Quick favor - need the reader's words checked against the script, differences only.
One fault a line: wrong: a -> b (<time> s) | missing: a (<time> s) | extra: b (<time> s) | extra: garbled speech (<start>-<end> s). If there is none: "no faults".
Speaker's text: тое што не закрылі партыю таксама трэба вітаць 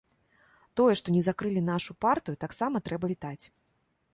extra: нашу (1.7 s)